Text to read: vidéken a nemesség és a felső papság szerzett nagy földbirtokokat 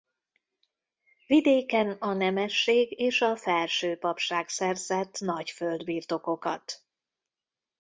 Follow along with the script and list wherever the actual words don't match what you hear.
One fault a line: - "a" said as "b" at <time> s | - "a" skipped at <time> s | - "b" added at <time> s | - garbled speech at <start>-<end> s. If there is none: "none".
none